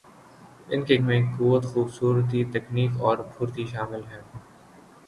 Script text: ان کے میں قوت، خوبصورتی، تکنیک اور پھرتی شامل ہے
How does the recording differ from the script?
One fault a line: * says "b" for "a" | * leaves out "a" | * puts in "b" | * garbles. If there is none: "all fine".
all fine